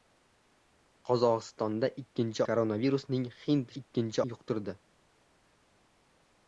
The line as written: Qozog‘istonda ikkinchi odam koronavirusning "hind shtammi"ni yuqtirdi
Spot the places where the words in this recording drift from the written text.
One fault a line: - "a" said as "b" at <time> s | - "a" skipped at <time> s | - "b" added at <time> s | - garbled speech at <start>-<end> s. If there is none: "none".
- "odam" skipped at 2.4 s
- "shtammi"ni" said as "ikkinchi" at 3.8 s